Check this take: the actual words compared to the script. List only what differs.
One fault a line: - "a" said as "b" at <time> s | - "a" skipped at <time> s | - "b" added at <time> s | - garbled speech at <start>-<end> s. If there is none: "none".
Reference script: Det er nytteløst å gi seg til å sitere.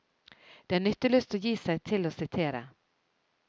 none